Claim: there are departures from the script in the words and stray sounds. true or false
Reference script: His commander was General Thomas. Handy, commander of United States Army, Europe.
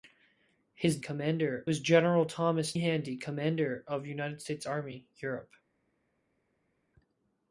false